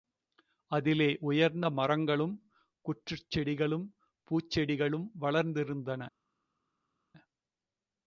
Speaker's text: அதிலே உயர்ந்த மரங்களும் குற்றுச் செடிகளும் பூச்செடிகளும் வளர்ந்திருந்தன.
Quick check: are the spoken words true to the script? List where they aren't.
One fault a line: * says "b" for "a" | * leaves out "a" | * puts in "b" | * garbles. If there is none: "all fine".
all fine